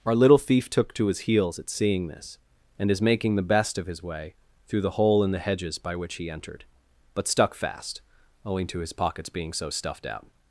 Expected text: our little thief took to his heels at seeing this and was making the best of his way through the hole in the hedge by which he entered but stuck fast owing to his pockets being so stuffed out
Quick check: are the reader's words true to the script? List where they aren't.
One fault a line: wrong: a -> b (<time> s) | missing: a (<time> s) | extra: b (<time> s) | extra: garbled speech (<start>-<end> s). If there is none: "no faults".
wrong: was -> is (2.9 s)
wrong: hedge -> hedges (5.4 s)